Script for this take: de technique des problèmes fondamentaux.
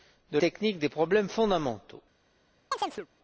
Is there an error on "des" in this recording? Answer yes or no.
no